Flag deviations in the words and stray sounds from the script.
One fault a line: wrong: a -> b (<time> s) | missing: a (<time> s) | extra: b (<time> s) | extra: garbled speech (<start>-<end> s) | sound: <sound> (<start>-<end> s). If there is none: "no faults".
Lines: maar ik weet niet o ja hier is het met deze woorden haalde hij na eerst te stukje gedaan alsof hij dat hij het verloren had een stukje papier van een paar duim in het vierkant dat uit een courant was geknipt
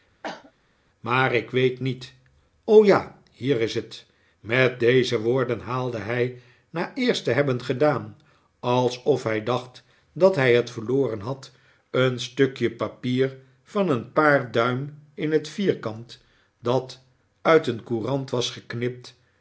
sound: cough (0.2-0.5 s)
wrong: stukje -> hebben (7.3 s)
extra: dacht (9.4 s)